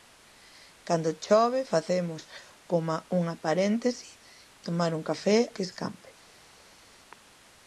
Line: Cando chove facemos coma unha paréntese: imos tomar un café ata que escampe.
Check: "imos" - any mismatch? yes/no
yes